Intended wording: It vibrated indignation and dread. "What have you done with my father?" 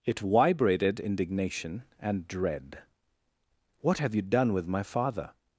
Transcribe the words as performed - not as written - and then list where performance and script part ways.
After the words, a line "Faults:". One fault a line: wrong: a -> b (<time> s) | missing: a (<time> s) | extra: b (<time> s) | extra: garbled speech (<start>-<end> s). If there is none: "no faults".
It vibrated indignation and dread. "What have you done with my father?"
Faults:
no faults